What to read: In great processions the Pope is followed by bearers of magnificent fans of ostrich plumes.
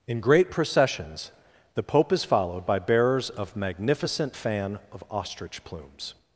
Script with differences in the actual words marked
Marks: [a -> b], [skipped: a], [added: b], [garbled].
In great processions the Pope is followed by bearers of magnificent [fans -> fan] of ostrich plumes.